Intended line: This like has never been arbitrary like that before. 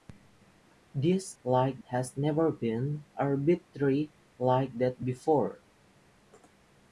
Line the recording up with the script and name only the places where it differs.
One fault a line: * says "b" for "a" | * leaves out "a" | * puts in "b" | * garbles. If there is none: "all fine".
all fine